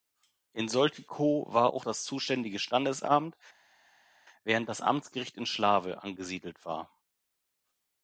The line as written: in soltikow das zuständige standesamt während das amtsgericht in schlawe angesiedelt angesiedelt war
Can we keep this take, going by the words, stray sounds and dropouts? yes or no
no